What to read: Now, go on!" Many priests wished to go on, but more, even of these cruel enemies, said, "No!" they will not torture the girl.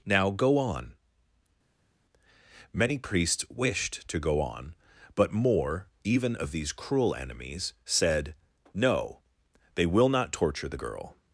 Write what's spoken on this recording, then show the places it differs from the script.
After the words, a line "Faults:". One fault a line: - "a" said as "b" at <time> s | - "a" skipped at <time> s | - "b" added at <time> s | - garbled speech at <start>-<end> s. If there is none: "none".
Now, go on!" Many priests wished to go on, but more, even of these cruel enemies, said, "No!" they will not torture the girl.
Faults:
none